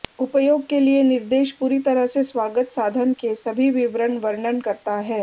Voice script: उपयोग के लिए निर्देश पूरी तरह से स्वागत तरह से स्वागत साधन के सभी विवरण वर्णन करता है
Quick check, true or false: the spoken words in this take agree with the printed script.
false